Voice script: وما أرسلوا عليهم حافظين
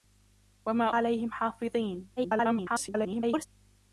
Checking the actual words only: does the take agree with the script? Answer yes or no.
no